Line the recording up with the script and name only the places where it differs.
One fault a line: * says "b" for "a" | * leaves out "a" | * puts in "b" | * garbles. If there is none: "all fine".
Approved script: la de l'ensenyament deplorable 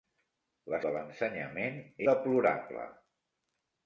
all fine